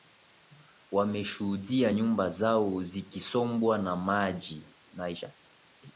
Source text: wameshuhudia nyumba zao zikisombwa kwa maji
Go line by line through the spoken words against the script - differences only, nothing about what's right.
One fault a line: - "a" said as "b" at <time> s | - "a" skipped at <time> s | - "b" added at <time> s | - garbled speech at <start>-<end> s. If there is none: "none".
- "kwa" said as "na" at 3.8 s